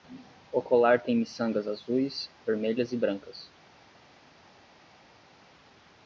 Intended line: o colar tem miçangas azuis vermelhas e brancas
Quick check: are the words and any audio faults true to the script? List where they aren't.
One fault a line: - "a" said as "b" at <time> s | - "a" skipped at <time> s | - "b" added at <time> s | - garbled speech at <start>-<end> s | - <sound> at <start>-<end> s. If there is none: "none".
none